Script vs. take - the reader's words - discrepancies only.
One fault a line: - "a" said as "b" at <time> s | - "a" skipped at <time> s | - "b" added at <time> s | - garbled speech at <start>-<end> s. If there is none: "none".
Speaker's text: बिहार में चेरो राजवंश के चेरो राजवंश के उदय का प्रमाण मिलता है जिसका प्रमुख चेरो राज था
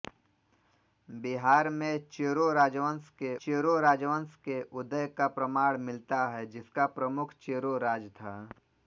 none